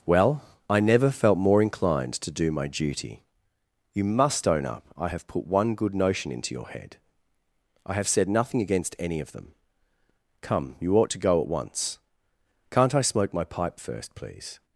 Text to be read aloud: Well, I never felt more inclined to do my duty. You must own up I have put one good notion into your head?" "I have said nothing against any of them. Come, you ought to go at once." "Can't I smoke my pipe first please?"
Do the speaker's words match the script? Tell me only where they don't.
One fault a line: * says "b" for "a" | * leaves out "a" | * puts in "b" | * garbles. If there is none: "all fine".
all fine